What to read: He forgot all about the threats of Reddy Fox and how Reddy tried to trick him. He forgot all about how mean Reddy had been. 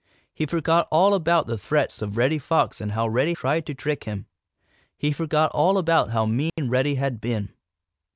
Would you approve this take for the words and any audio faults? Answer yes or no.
no